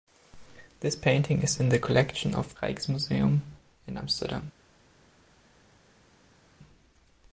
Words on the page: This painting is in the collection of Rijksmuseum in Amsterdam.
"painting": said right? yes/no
yes